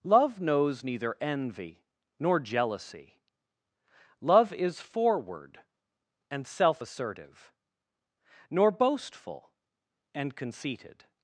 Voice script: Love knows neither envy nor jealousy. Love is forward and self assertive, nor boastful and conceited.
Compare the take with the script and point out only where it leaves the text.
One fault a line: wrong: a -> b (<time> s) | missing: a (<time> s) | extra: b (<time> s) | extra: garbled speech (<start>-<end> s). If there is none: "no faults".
no faults